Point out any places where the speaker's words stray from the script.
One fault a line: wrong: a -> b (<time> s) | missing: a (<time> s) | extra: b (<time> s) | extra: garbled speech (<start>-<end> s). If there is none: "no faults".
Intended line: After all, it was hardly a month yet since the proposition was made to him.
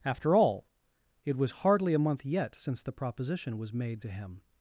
no faults